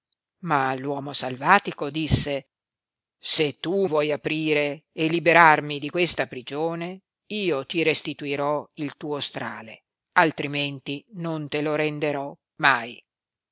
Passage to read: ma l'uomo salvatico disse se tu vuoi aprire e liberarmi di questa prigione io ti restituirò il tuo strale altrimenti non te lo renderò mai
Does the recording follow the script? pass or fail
pass